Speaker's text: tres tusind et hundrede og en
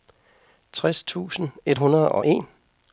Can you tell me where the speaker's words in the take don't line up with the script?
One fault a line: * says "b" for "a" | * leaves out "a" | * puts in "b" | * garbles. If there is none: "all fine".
all fine